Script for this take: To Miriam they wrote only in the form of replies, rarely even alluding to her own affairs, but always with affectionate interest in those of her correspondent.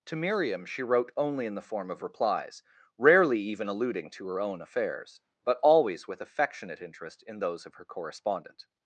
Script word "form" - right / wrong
right